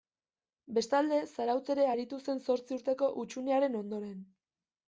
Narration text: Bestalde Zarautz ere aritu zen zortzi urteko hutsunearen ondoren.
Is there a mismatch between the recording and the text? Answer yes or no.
no